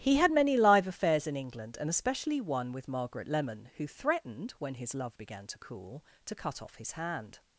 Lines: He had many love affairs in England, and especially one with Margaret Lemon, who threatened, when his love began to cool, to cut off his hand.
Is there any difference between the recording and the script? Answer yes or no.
yes